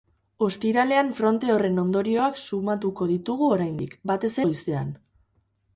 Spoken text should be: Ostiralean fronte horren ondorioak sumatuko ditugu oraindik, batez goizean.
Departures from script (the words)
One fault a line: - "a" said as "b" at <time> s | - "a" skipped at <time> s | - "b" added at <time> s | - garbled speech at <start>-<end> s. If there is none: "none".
none